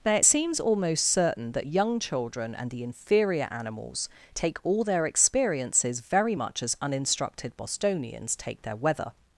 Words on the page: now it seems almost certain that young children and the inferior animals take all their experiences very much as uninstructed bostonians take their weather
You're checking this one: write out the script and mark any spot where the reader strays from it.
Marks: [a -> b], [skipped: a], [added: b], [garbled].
now it seems almost certain that young children and the inferior animals take all their experiences very much as uninstructed bostonians take their weather